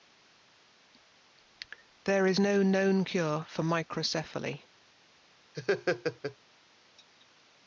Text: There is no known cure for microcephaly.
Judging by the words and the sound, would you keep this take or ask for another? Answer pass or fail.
fail